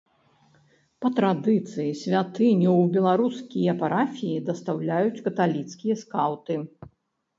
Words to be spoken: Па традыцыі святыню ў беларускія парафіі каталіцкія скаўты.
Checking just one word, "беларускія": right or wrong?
right